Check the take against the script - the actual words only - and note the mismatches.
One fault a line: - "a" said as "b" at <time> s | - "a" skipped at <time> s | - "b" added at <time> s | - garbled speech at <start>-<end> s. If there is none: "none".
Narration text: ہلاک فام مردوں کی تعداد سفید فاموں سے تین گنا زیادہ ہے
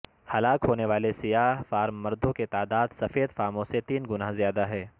- "ہونے والے سیاہ" added at 0.7 s